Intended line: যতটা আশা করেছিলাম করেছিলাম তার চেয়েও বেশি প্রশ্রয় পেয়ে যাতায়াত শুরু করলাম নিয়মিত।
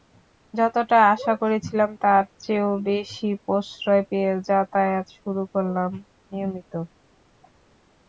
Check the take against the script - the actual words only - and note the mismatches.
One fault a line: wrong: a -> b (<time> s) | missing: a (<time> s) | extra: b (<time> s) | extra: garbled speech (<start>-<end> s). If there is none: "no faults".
missing: করেছিলাম (1.9 s)